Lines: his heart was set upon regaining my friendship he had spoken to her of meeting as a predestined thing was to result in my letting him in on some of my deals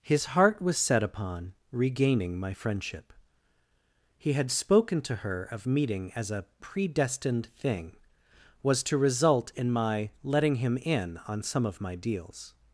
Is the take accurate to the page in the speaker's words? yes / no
yes